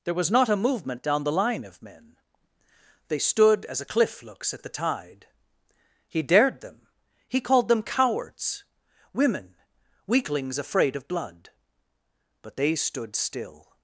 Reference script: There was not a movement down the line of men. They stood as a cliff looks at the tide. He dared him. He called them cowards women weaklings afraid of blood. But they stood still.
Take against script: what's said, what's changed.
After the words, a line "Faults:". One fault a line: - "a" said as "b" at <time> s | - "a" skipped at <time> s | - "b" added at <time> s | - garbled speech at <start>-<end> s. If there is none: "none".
There was not a movement down the line of men. They stood as a cliff looks at the tide. He dared them. He called them cowards women weaklings afraid of blood. But they stood still.
Faults:
- "him" said as "them" at 6.6 s